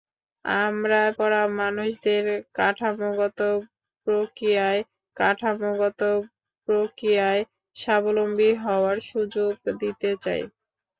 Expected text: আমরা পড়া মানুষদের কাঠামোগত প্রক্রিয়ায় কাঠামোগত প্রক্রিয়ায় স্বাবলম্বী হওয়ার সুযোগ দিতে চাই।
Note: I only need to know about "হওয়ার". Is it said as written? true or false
true